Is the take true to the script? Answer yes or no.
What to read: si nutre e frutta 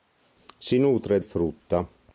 yes